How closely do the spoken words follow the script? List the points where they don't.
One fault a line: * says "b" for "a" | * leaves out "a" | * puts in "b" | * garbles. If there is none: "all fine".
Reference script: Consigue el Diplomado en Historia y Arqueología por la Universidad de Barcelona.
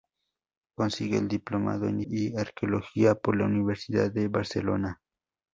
* leaves out "Historia"